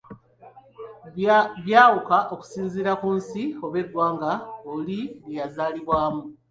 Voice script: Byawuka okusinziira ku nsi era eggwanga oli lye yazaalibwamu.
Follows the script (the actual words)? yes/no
no